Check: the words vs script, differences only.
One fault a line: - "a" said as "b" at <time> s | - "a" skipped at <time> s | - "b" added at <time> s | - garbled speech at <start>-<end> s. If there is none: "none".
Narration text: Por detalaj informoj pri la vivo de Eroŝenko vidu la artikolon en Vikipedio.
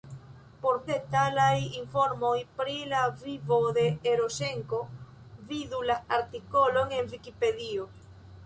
none